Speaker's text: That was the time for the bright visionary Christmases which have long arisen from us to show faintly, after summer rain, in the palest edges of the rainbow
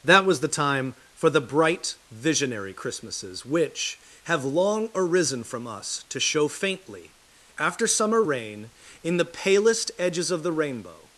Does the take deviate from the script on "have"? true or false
false